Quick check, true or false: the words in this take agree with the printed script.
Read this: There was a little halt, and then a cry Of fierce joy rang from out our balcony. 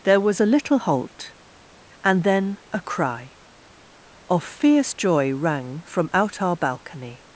true